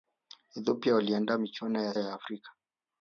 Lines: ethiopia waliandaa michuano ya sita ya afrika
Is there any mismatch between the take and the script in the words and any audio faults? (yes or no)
yes